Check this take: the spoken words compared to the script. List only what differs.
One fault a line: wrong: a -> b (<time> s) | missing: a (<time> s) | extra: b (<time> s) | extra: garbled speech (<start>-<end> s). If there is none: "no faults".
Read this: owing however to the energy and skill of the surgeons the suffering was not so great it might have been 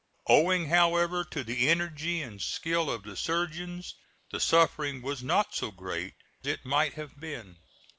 no faults